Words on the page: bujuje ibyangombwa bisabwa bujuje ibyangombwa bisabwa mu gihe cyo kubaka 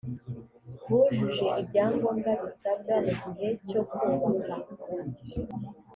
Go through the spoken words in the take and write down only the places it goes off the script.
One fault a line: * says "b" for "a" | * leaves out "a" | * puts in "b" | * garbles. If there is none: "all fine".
* leaves out "bujuje ibyangombwa bisabwa"